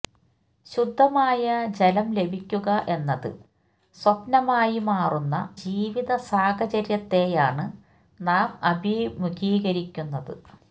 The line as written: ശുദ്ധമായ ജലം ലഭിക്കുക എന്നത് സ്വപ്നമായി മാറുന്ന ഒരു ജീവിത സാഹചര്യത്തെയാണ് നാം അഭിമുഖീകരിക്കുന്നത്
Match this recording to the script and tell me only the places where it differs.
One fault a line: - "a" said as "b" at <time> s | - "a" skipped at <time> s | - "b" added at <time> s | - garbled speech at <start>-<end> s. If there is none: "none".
- "ഒരു" skipped at 5.3 s